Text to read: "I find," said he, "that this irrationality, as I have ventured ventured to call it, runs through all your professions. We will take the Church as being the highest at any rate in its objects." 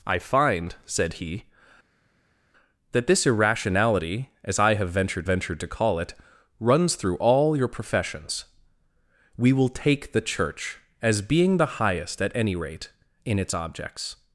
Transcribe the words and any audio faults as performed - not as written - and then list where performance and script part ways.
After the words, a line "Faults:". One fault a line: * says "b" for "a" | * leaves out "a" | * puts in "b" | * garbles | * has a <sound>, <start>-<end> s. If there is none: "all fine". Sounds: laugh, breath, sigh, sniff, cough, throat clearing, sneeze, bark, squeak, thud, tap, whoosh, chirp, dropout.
"I find," said he, "that this irrationality, as I have ventured ventured to call it, runs through all your professions. We will take the Church as being the highest at any rate in its objects."
Faults:
all fine